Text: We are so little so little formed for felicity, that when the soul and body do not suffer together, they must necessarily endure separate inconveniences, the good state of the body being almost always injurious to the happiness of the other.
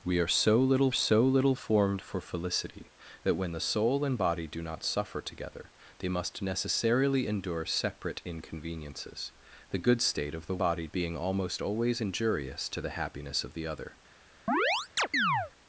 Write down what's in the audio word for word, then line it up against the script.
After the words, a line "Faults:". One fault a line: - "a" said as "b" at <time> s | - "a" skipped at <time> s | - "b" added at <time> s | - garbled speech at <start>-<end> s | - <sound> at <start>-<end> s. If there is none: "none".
We are so little so little formed for felicity, that when the soul and body do not suffer together, they must necessarily endure separate inconveniences, the good state of the body being almost always injurious to the happiness of the other.
Faults:
- chirp at 14.5-15.5 s